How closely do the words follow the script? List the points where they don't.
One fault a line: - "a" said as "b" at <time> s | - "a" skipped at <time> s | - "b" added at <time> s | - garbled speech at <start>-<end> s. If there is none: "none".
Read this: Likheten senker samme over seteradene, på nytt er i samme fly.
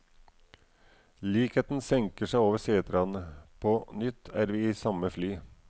- "samme" said as "seg" at 2.3 s
- "vi" added at 4.5 s